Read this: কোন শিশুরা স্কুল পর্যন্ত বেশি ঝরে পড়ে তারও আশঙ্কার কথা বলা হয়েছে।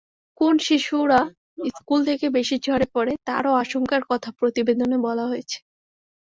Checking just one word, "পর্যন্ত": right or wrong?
wrong